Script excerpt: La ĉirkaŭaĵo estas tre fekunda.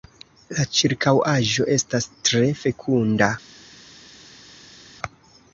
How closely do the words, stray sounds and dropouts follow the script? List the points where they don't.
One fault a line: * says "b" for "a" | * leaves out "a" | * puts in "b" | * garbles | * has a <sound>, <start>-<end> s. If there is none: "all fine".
all fine